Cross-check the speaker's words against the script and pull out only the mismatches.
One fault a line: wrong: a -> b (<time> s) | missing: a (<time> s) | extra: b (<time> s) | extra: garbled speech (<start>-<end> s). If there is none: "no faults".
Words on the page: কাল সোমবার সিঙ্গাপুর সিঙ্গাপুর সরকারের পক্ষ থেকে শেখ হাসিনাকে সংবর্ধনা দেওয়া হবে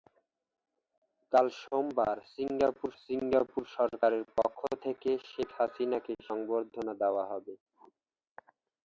no faults